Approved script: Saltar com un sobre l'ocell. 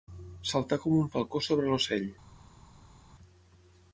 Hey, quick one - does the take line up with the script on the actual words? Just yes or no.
no